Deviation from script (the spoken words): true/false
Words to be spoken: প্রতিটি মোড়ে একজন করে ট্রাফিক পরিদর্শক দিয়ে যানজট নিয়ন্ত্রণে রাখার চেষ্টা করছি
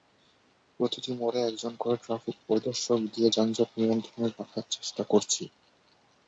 false